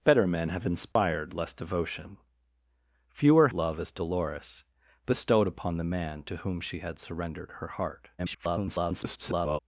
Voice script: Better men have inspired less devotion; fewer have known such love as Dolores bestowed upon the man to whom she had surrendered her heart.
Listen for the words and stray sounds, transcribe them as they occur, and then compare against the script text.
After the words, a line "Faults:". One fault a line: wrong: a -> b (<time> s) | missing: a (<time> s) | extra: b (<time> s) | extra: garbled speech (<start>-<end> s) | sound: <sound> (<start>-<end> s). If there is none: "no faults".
Better men have inspired less devotion; fewer love as Dolores bestowed upon the man to whom she had surrendered her heart. [garbled]
Faults:
sound: dropout (0.9-1.0 s)
missing: have known such (3.5 s)
extra: garbled speech (8.2-9.6 s)